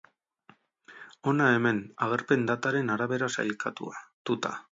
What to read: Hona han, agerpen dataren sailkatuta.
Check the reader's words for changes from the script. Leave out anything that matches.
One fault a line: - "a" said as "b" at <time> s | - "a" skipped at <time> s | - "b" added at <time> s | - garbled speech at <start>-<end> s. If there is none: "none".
- "han" said as "hemen" at 1.6 s
- "arabera" added at 3.0 s